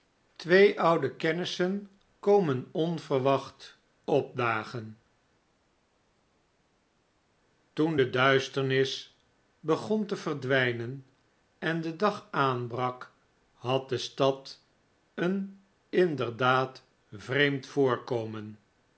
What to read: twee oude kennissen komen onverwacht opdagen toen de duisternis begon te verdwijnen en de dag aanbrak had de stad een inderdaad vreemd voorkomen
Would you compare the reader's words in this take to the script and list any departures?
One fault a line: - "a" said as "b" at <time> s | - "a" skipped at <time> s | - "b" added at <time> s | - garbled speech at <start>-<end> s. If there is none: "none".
none